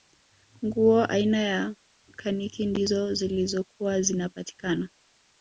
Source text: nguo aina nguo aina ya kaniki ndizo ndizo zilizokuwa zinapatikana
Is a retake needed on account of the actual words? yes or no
yes